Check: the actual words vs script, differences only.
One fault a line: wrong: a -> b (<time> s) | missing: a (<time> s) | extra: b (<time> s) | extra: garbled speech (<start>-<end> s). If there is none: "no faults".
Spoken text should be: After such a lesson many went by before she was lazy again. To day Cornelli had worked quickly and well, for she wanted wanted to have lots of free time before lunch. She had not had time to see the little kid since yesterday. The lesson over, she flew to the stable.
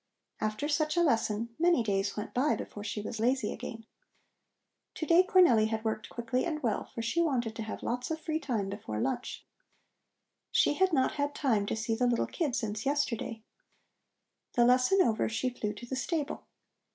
extra: days (1.8 s)
missing: wanted (7.6 s)